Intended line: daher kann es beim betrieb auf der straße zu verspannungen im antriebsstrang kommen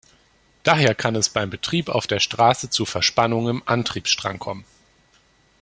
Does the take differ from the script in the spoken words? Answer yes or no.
no